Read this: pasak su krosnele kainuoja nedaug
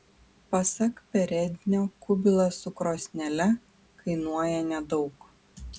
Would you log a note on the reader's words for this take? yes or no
yes